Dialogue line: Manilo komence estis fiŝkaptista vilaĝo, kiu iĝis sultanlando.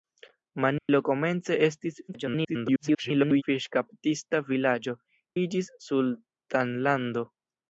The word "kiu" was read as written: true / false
false